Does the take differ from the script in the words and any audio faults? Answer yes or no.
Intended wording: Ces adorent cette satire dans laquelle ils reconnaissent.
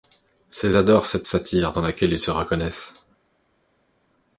yes